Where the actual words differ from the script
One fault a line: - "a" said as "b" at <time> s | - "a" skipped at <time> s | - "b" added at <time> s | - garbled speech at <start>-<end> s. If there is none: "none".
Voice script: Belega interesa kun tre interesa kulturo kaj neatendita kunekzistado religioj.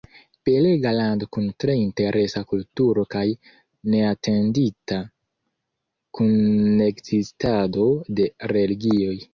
- "interesa" said as "lando" at 1.0 s
- "de" added at 8.2 s